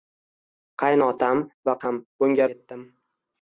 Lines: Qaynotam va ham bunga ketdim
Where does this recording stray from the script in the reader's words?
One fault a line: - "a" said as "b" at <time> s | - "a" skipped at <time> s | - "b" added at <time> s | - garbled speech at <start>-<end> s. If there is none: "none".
none